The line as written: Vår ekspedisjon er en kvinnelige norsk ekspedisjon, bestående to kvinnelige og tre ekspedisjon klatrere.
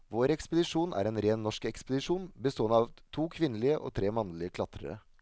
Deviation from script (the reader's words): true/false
true